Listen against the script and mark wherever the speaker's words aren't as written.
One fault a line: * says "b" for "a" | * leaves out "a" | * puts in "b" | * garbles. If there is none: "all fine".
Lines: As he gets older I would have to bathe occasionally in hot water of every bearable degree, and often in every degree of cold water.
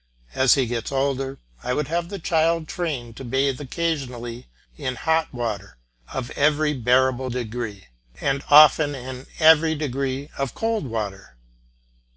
* puts in "the child trained"